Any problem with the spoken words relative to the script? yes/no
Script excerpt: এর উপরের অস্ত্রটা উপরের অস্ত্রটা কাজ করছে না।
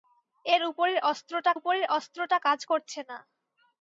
no